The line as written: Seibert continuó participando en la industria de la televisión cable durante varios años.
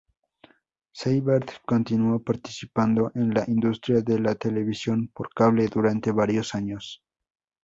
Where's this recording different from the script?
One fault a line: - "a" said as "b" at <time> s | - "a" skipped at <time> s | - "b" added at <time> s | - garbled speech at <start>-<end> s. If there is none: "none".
- "por" added at 5.1 s